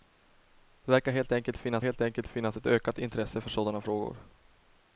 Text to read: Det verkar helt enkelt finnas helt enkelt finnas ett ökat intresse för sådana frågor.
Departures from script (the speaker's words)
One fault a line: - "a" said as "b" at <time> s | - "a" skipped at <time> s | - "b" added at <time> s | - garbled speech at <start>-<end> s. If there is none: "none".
none